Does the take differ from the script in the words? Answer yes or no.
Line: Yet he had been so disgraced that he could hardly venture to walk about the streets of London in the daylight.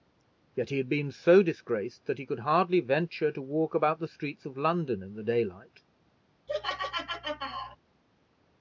no